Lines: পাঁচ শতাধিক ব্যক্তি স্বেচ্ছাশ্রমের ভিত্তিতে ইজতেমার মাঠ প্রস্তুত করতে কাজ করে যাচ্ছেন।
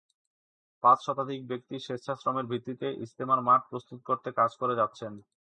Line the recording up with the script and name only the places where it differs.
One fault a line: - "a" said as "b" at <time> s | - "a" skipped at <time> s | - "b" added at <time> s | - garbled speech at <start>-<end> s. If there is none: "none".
none